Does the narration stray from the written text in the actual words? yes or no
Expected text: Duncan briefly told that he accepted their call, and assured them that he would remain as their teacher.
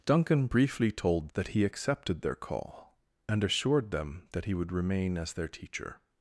no